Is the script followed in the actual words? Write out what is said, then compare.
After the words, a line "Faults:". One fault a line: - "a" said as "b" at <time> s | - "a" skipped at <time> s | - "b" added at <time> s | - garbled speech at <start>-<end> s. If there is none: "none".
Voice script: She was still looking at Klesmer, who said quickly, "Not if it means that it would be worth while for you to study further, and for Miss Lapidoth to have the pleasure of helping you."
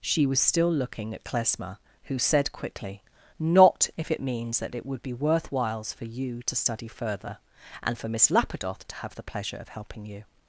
She was still looking at Klesmer, who said quickly, "Not if it means that it would be worth whiles for you to study further, and for Miss Lapidoth to have the pleasure of helping you."
Faults:
- "while" said as "whiles" at 5.5 s